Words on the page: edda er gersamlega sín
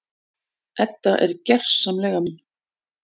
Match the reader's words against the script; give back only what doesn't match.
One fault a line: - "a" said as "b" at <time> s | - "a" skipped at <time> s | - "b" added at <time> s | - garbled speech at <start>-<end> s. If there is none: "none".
none